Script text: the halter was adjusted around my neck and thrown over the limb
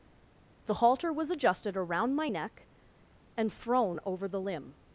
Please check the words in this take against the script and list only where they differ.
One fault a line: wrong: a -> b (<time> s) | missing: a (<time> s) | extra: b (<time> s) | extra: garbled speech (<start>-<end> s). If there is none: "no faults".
no faults